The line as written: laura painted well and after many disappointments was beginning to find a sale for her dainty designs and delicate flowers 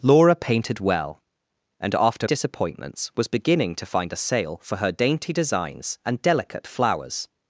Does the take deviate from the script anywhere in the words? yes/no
yes